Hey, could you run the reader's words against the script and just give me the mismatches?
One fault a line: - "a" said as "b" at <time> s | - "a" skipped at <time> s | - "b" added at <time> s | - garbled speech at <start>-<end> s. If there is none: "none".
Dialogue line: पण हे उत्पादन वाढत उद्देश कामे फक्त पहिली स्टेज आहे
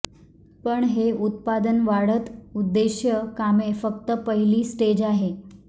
none